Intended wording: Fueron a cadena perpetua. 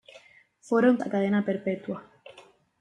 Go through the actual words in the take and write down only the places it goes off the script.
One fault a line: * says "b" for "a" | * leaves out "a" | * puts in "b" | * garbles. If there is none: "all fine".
all fine